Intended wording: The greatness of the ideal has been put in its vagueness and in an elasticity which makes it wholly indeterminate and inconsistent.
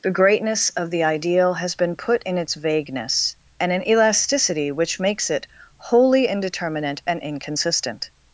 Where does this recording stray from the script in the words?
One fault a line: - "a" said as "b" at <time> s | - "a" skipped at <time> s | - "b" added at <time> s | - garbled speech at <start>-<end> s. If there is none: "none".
- "in" skipped at 3.7 s